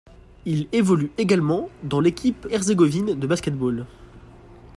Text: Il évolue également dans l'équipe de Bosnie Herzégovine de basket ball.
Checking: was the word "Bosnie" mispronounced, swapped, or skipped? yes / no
yes